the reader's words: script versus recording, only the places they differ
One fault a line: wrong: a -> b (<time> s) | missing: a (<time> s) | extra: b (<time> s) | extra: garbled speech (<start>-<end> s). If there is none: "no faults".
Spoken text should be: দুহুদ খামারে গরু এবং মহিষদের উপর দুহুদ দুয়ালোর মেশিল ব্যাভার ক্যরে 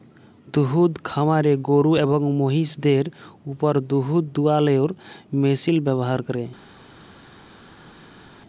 no faults